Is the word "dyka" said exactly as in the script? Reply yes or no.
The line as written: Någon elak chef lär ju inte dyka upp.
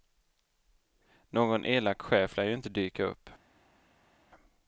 yes